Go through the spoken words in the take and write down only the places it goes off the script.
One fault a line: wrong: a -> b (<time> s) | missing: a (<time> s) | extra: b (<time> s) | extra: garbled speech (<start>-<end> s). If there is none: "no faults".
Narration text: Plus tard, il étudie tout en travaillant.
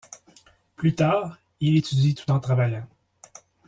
no faults